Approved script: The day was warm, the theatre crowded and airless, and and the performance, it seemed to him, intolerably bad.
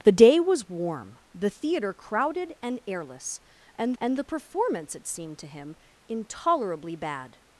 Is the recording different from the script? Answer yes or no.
no